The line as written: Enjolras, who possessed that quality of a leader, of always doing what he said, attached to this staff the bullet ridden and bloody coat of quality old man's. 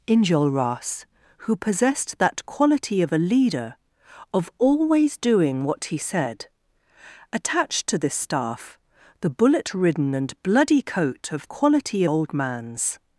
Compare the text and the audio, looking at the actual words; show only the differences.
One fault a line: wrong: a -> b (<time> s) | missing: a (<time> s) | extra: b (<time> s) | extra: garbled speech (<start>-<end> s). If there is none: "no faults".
no faults